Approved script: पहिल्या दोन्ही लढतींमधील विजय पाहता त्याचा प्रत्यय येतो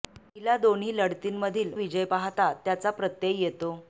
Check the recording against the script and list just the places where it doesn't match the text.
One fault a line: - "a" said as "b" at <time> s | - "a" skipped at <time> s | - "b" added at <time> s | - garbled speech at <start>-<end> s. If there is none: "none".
none